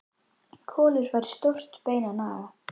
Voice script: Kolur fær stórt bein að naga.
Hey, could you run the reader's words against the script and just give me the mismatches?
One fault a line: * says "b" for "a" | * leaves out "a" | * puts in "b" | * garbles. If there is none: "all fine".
all fine